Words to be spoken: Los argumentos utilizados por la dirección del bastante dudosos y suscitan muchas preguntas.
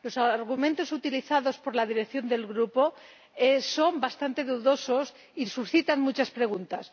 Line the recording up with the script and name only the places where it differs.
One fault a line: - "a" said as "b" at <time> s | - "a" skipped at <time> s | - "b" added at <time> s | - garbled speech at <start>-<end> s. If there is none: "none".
- "grupo son" added at 2.5 s